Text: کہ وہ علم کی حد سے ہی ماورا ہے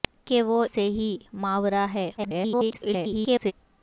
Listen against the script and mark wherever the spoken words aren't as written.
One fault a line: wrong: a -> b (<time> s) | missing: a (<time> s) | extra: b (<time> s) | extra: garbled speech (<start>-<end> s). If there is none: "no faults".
missing: علم کی حد (0.6 s)
extra: garbled speech (2.2-3.5 s)